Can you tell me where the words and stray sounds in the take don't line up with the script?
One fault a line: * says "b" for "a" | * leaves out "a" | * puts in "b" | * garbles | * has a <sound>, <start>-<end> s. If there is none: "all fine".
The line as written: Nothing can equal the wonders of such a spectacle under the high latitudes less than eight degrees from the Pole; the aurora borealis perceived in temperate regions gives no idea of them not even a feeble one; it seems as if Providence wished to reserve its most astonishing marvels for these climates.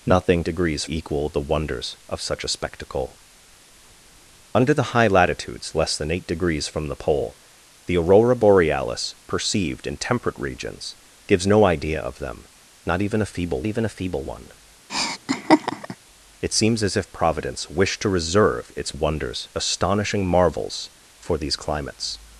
* says "degrees" for "can"
* puts in "even a feeble"
* has a laugh, 14.9-16.0 s
* says "wonders" for "most"